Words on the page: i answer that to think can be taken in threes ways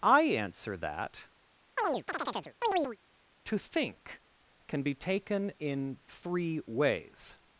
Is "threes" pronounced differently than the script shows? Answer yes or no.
yes